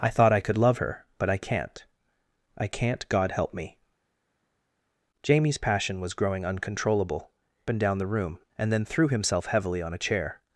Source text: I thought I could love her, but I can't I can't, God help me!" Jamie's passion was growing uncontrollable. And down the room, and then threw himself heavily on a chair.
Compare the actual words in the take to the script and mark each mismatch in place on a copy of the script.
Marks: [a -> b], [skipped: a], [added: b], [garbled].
I thought I could love her, but I can't I can't, God help me!" Jamie's passion was growing uncontrollable. And down the room, and then threw himself heavily on a chair.